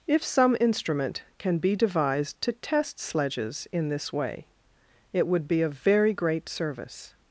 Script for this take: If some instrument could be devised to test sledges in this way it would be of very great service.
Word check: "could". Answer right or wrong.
wrong